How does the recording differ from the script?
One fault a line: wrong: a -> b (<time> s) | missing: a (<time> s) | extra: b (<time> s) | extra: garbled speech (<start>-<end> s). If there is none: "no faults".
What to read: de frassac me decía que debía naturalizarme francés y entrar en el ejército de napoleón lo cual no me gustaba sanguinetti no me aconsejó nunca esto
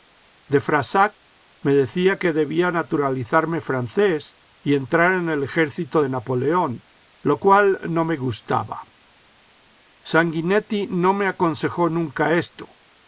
no faults